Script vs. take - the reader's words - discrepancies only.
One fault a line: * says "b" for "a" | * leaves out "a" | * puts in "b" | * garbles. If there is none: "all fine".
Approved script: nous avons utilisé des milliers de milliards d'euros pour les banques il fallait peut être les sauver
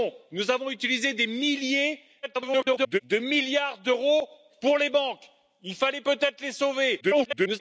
* garbles
* garbles